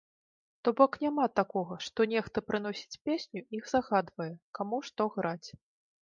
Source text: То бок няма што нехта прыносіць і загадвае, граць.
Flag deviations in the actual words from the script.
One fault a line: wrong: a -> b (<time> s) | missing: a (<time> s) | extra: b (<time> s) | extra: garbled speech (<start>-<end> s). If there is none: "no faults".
extra: такога (1.4 s)
extra: песню (3.1 s)
extra: каму што (4.6 s)